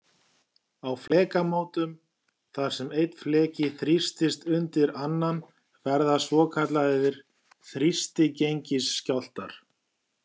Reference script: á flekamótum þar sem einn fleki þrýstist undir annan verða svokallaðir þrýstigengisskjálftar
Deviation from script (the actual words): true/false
false